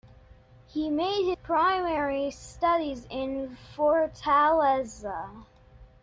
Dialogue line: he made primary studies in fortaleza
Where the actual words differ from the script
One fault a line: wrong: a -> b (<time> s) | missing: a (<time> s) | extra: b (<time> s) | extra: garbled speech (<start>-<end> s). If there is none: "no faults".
no faults